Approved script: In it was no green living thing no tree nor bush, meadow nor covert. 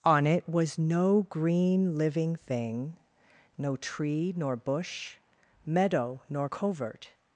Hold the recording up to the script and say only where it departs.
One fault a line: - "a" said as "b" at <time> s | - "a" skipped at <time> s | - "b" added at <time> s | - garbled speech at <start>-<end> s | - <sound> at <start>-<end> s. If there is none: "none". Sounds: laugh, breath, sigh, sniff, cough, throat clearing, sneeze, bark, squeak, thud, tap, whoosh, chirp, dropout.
- "In" said as "On" at 0.0 s